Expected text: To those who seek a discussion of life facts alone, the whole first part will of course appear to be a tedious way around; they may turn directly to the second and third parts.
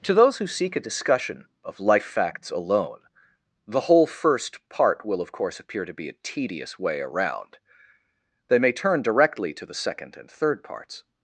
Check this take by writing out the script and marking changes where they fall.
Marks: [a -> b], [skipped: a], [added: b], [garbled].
To those who seek a discussion of life facts alone, the whole first part will of course appear to be a tedious way around; they may turn directly to the second and third parts.